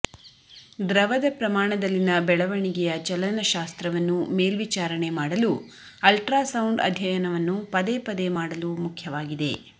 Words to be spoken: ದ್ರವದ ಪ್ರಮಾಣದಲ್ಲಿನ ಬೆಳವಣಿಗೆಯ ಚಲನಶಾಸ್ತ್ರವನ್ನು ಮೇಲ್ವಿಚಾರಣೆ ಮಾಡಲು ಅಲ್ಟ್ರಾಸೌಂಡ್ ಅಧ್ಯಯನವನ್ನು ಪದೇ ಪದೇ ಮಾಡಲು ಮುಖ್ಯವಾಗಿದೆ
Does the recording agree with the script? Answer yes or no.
yes